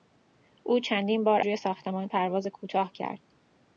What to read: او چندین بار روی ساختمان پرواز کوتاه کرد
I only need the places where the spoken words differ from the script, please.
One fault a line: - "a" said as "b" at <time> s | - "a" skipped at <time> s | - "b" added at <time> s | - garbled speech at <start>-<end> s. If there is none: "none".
none